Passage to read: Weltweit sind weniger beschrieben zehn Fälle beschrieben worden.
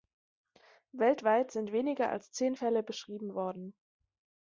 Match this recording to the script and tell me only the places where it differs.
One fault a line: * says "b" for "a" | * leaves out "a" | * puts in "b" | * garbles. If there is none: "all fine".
* says "als" for "beschrieben"